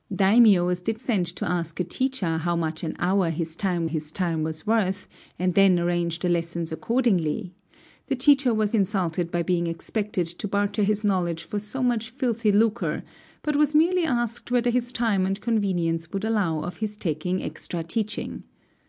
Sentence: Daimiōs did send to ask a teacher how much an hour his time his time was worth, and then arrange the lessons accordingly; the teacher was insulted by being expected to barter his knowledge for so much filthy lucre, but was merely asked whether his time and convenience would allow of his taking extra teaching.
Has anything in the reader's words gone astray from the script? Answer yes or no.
no